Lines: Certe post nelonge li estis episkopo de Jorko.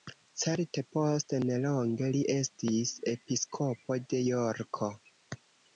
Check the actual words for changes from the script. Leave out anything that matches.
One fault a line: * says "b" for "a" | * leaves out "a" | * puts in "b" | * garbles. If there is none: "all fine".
all fine